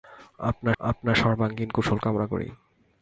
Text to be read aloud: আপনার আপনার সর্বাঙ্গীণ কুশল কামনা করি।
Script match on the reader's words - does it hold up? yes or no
yes